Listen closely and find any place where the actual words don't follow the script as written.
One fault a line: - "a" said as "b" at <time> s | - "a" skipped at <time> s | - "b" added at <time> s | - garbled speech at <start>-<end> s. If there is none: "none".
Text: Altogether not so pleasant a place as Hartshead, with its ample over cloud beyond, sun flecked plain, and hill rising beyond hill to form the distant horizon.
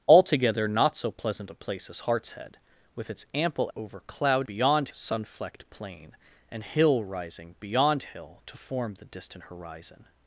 none